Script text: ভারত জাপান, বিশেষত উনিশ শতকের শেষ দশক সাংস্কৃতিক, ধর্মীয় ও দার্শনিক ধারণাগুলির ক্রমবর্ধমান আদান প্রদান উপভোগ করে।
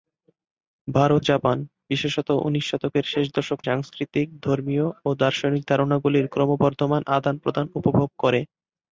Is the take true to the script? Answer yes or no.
yes